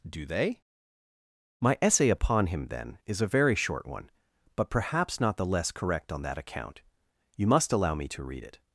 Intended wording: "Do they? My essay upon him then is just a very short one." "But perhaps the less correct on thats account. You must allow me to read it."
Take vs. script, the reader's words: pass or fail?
fail